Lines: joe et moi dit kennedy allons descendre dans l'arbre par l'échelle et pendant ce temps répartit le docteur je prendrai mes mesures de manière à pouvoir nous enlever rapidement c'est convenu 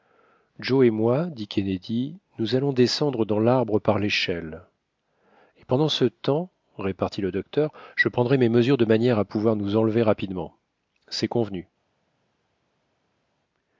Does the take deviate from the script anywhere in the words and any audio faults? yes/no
yes